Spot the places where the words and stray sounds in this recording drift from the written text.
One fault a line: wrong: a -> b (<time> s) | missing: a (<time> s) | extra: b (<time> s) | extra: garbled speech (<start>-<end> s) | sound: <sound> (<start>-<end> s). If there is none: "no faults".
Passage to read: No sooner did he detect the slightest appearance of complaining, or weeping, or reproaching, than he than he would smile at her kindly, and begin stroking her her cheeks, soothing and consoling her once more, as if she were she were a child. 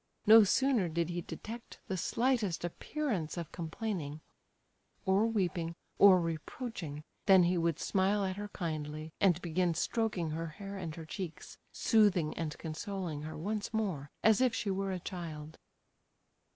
missing: than he (7.6 s)
extra: hair and (10.5 s)
missing: she were (14.9 s)